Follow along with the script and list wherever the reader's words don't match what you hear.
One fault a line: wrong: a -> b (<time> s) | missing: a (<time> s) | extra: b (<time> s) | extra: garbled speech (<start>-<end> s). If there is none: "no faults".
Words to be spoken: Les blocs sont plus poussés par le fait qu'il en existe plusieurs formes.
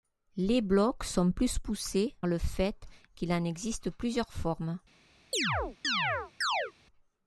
missing: par (2.1 s)